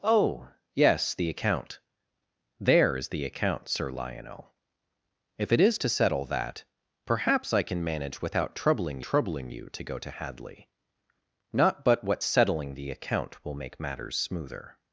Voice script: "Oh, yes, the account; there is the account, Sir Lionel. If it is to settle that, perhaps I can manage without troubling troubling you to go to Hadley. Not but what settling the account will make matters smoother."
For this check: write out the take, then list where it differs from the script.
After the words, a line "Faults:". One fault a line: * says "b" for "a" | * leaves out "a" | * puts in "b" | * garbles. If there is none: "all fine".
"Oh, yes, the account; there is the account, Sir Lionel. If it is to settle that, perhaps I can manage without troubling troubling you to go to Hadley. Not but what settling the account will make matters smoother."
Faults:
all fine